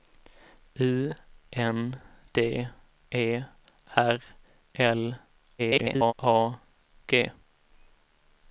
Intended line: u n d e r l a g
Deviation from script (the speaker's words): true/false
true